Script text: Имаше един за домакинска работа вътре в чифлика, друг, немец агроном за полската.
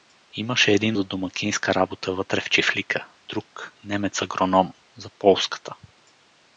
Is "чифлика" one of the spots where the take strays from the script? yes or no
no